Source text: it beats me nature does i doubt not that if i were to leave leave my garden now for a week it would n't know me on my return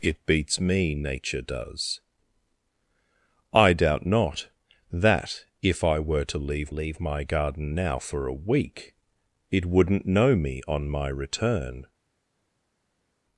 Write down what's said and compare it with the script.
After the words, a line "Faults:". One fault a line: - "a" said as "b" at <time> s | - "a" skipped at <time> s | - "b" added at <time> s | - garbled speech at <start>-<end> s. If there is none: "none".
it beats me nature does i doubt not that if i were to leave leave my garden now for a week it would n't know me on my return
Faults:
none